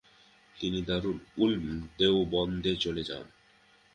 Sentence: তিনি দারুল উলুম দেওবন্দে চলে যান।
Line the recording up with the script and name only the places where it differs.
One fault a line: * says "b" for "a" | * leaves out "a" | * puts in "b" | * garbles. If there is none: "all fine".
all fine